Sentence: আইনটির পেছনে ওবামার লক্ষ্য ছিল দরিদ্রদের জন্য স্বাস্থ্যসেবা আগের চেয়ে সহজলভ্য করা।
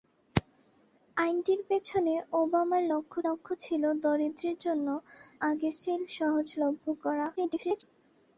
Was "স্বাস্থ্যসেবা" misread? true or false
true